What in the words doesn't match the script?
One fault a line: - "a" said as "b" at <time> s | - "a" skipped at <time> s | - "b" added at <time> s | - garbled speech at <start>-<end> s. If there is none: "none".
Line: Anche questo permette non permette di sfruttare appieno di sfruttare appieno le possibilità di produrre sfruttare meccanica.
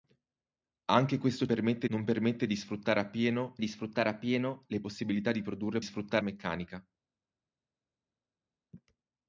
none